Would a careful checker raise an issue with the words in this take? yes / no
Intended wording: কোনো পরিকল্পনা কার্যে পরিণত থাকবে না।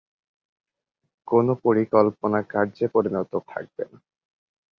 no